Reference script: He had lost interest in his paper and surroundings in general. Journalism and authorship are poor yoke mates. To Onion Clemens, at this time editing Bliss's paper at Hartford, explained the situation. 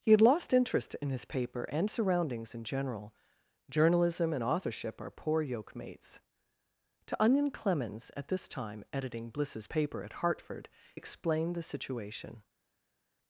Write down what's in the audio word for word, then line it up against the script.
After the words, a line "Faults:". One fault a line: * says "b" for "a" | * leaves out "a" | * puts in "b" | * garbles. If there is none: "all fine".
He had lost interest in his paper and surroundings in general. Journalism and authorship are poor yoke mates. To Onion Clemens, at this time editing Bliss's paper at Hartford, explained the situation.
Faults:
all fine